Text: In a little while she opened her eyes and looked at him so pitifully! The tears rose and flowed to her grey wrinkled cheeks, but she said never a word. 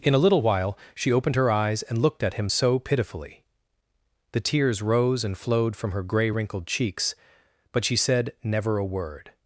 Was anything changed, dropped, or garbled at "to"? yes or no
yes